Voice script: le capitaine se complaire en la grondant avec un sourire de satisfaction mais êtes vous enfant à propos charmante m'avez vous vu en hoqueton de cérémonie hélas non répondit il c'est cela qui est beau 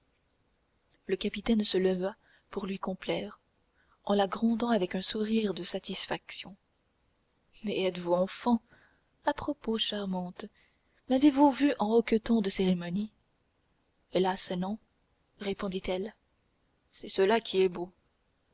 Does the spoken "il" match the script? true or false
false